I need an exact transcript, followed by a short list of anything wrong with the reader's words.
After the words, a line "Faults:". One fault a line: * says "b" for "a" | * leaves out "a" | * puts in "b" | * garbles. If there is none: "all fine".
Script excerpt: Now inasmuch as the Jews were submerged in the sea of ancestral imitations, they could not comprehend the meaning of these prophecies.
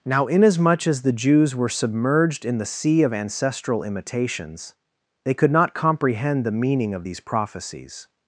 Now inasmuch as the Jews were submerged in the sea of ancestral imitations, they could not comprehend the meaning of these prophecies.
Faults:
all fine